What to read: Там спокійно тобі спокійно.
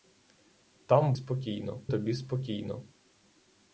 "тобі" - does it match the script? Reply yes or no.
yes